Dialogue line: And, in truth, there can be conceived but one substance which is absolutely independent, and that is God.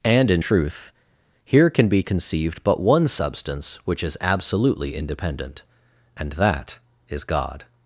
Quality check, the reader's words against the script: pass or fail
fail